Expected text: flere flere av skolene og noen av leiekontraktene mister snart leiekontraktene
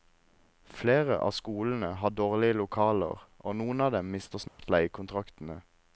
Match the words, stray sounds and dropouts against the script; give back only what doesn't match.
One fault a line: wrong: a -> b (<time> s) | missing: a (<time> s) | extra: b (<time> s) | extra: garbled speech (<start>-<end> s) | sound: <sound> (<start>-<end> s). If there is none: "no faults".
missing: flere (1.2 s)
extra: har dårlige lokaler (2.0 s)
wrong: leiekontraktene -> dem (4.0 s)
sound: dropout (4.5-4.6 s)